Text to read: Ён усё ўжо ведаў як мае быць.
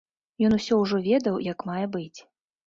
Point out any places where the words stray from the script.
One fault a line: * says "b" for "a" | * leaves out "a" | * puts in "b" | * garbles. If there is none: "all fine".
all fine